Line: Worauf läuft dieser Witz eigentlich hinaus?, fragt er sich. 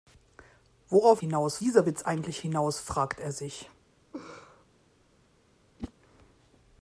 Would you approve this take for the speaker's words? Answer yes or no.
no